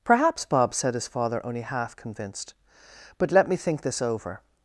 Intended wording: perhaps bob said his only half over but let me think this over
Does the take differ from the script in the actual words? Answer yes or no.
yes